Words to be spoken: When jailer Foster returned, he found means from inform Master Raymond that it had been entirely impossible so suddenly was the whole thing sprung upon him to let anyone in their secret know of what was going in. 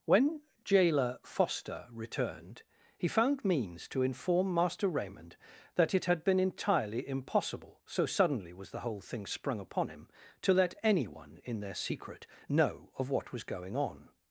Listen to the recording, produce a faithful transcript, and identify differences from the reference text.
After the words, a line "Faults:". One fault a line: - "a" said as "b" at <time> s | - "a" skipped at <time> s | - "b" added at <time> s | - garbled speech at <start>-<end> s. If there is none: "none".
When jailer Foster returned, he found means to inform Master Raymond that it had been entirely impossible so suddenly was the whole thing sprung upon him to let anyone in their secret know of what was going on.
Faults:
- "from" said as "to" at 3.9 s
- "in" said as "on" at 13.8 s